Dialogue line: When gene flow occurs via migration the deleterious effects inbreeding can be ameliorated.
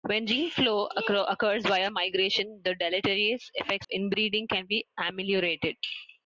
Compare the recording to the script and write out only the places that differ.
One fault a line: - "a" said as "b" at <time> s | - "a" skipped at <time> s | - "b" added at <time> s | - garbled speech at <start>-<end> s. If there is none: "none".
none